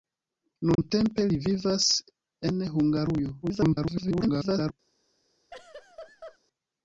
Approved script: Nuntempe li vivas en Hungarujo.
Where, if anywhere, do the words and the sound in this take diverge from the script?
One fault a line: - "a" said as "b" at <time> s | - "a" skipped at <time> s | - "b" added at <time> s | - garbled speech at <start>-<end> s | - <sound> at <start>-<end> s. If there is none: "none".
- dropout at 0.7-0.8 s
- garbled speech at 3.4-4.7 s
- laugh at 5.5-6.4 s